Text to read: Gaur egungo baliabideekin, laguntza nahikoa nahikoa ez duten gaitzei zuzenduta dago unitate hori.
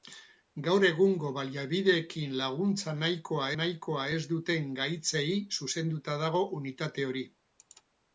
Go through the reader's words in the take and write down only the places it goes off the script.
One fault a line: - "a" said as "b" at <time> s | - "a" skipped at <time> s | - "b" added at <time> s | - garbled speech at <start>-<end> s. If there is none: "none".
none